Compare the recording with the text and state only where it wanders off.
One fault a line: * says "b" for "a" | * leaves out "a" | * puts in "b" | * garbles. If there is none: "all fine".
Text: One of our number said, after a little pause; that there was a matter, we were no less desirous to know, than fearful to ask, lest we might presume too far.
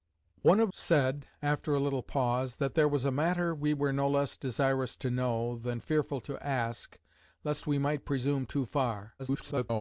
* leaves out "our number"
* garbles